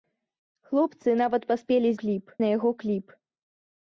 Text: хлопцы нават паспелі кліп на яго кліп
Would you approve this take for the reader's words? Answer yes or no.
yes